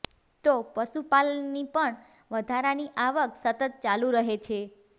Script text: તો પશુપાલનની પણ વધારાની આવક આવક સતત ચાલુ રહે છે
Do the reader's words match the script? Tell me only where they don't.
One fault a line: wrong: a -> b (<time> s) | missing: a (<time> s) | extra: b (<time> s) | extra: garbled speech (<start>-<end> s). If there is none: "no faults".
missing: આવક (3.3 s)